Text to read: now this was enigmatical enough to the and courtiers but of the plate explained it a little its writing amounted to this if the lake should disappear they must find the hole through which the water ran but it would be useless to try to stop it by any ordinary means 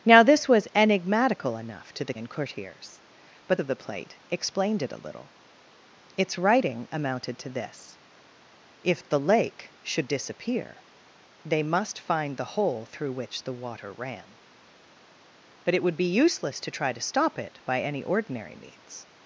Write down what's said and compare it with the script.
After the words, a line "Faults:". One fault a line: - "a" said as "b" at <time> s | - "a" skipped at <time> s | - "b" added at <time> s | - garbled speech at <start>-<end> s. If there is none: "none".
now this was enigmatical enough to the and courtiers but of the plate explained it a little its writing amounted to this if the lake should disappear they must find the hole through which the water ran but it would be useless to try to stop it by any ordinary means
Faults:
none